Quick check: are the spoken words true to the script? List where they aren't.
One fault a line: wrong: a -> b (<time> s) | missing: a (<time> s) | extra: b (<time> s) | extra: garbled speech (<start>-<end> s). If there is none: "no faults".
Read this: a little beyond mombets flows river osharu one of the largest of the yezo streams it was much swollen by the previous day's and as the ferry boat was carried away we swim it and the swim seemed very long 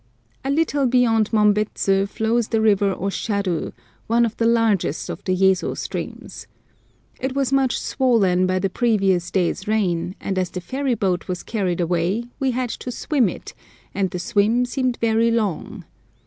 extra: the (2.5 s)
extra: rain (9.7 s)
extra: had to (12.5 s)